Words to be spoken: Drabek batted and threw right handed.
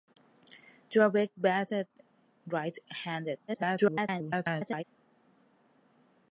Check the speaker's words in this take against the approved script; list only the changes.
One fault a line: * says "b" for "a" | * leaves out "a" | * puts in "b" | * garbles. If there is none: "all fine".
* leaves out "and threw"
* garbles